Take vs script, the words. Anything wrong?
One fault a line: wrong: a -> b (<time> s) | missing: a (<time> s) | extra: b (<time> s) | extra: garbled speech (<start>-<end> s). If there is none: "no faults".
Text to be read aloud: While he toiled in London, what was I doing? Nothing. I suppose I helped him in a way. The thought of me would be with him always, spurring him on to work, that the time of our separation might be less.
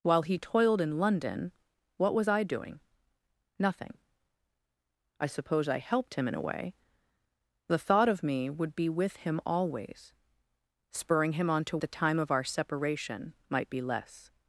missing: work that (11.8 s)